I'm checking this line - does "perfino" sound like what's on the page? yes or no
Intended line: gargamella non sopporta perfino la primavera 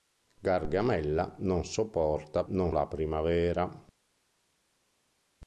no